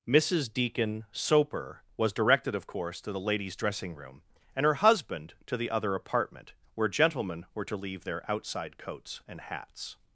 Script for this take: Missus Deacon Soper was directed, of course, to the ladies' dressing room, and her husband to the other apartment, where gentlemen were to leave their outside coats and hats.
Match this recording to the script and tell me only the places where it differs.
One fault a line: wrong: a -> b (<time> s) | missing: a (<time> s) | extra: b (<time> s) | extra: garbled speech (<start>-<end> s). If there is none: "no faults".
no faults